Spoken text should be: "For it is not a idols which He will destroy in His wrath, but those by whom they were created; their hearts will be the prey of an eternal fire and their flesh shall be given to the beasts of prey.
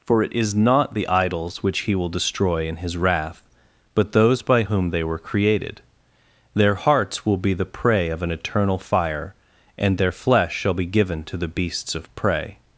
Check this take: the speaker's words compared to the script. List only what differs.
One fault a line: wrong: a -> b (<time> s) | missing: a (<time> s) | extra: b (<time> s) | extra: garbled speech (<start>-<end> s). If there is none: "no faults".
wrong: a -> the (0.9 s)